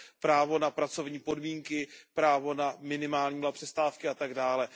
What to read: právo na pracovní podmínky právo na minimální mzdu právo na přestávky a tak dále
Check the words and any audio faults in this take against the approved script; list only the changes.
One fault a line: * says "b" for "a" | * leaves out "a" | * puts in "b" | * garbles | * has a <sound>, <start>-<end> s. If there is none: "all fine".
* leaves out "mzdu právo"